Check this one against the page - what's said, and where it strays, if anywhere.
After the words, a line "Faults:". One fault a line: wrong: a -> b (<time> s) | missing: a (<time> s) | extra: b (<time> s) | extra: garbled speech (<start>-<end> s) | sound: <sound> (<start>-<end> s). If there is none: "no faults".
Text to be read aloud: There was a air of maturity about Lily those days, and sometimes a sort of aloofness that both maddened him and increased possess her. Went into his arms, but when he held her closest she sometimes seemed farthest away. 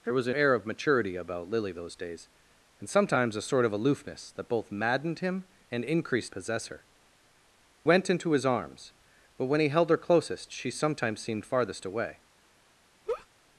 There was a air of maturity about Lily those days, and sometimes a sort of aloofness that both maddened him and increased possess her. Went into his arms, but when he held her closest she sometimes seemed farthest away.
Faults:
sound: laugh (13.1-13.3 s)